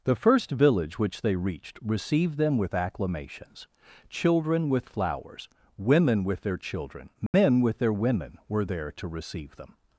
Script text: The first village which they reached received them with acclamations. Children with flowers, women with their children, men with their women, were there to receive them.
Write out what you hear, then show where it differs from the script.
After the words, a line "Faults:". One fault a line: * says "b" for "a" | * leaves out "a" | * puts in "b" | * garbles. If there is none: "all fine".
The first village which they reached received them with acclamations. Children with flowers, women with their children, men with their women, were there to receive them.
Faults:
all fine